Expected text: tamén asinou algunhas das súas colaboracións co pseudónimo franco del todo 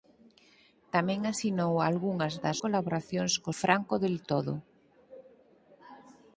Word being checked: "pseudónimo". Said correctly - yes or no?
no